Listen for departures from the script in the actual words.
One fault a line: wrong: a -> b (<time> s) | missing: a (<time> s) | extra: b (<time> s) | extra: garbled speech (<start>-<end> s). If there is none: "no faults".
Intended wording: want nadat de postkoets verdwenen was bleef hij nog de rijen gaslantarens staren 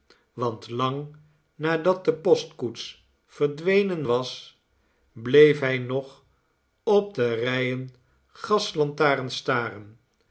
extra: lang (0.7 s)
extra: op (6.8 s)